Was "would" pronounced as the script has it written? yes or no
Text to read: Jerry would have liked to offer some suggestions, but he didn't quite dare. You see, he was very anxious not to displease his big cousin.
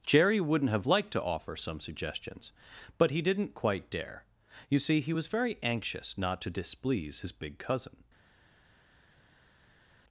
no